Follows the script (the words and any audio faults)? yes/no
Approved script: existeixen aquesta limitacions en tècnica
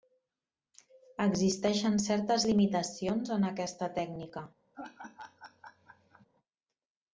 no